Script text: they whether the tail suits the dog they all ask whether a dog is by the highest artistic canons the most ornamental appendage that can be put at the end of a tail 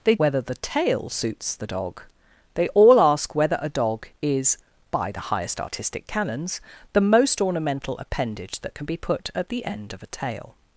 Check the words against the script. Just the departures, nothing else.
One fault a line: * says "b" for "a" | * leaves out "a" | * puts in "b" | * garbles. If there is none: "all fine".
all fine